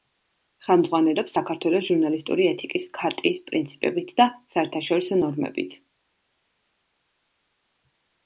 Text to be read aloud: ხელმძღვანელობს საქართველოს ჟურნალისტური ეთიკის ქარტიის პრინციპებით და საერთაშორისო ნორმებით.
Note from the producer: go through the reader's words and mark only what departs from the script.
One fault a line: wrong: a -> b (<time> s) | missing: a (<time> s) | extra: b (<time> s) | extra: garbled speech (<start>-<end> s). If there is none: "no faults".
no faults